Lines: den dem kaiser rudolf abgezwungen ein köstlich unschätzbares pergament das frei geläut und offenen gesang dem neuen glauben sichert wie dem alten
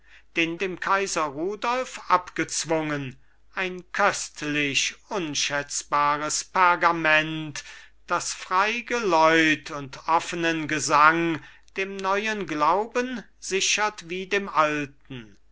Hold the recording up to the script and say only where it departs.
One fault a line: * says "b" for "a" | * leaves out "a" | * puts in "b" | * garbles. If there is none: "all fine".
all fine